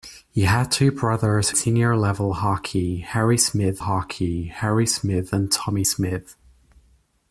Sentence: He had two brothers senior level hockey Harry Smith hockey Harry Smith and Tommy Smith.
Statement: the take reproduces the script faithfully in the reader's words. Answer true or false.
true